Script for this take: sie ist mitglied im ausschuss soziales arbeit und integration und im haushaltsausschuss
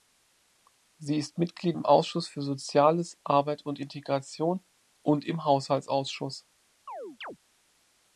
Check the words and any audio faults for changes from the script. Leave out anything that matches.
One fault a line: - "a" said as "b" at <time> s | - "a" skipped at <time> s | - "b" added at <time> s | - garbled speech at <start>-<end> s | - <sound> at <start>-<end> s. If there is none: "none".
- "für" added at 2.3 s
- chirp at 6.9-7.4 s